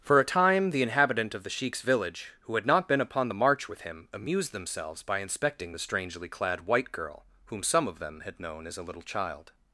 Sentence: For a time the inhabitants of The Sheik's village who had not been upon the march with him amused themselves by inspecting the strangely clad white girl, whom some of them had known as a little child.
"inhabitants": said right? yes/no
no